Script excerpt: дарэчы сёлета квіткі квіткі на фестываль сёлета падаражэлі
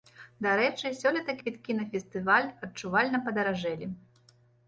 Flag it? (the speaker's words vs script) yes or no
yes